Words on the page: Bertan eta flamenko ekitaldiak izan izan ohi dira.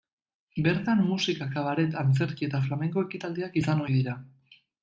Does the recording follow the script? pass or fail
fail